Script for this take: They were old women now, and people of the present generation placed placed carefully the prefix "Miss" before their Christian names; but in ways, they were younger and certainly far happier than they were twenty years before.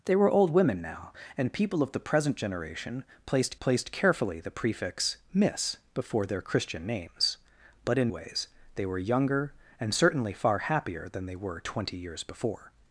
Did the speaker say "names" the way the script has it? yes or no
yes